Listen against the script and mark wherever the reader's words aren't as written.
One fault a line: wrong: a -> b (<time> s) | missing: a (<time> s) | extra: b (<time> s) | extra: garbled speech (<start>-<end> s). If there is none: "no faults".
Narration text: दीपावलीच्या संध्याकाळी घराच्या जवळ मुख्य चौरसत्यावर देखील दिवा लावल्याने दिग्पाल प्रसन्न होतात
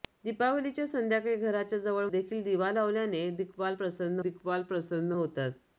missing: मुख्य चौरसत्यावर (2.1 s)
extra: दिग्पाल प्रसन्न (4.2 s)